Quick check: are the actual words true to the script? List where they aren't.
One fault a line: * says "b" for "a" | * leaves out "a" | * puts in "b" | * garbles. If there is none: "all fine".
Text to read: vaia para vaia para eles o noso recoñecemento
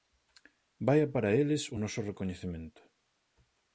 * leaves out "vaia para"